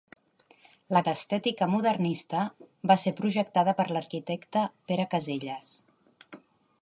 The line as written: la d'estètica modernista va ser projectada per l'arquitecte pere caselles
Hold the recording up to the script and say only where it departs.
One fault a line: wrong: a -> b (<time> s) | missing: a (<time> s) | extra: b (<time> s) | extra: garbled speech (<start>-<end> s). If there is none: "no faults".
no faults